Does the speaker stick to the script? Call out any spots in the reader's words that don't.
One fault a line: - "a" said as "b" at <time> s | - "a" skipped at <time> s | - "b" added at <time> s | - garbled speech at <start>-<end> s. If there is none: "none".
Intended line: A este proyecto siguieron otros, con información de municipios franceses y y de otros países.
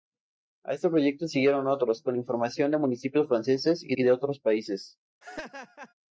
none